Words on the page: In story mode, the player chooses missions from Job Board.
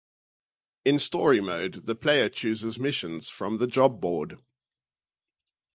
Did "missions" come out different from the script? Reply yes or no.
no